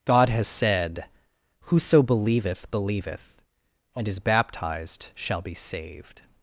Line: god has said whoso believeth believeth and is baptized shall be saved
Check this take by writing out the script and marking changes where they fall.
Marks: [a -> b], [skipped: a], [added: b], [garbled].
god has said whoso believeth believeth and is baptized shall be saved